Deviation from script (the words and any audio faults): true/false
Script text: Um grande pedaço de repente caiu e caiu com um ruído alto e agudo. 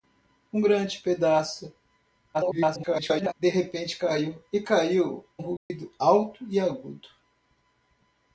true